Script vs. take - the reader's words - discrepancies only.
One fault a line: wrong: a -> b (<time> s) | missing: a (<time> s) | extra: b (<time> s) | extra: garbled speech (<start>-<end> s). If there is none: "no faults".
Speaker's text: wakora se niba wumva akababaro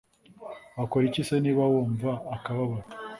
extra: iki (1.1 s)